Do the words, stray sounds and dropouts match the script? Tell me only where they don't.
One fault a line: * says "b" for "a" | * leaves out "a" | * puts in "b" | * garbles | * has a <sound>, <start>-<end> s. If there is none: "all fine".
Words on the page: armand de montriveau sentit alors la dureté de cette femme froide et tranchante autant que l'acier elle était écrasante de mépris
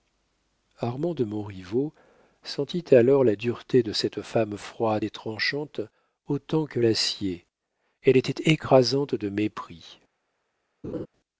* has a laugh, 10.8-11.1 s